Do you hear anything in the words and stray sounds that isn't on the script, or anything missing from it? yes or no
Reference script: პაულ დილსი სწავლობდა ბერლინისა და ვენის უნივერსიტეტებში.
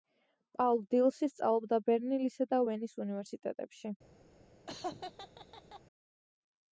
yes